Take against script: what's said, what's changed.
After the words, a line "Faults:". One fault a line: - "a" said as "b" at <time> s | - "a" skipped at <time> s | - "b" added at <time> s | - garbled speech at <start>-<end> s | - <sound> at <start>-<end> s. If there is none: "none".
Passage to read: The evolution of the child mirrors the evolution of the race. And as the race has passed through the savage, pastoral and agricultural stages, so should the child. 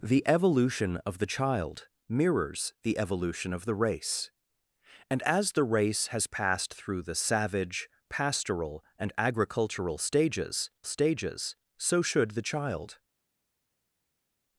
The evolution of the child mirrors the evolution of the race. And as the race has passed through the savage, pastoral and agricultural stages stages, so should the child.
Faults:
- "stages" added at 10.8 s